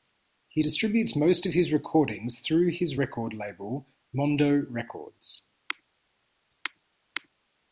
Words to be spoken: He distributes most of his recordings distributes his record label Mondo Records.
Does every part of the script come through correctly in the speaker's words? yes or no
no